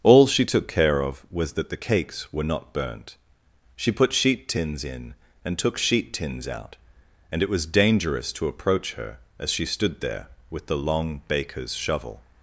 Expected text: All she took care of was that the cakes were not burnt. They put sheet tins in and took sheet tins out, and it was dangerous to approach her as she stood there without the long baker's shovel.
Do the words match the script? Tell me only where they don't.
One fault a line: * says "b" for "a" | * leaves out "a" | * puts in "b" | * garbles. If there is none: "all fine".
* says "She" for "They"
* says "with" for "without"